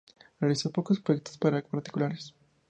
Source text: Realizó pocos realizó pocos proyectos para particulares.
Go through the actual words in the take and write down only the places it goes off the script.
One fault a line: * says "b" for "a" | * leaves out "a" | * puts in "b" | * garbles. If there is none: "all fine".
* leaves out "realizó pocos"